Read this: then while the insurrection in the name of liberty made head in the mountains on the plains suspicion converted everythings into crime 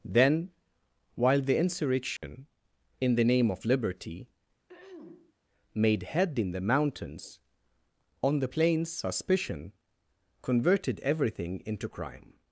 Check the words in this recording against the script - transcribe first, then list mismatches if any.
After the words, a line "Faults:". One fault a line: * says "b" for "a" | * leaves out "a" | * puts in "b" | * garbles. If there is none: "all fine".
then while the insurrection in the name of liberty made head in the mountains on the plains suspicion converted everything into crime
Faults:
* says "everything" for "everythings"